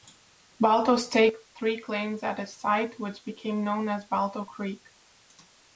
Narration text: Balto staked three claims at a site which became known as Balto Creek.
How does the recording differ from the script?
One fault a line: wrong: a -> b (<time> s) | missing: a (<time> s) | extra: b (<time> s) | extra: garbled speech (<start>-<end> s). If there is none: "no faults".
no faults